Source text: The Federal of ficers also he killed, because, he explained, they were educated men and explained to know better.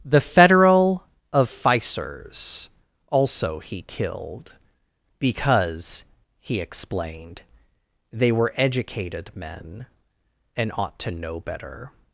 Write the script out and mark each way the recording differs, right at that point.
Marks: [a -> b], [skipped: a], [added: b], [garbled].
The Federal of ficers also he killed, because, he explained, they were educated men and [explained -> ought] to know better.